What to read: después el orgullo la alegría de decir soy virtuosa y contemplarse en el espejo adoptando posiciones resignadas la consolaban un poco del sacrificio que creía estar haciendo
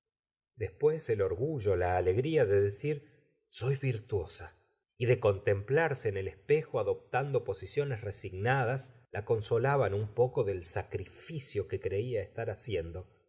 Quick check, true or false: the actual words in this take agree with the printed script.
false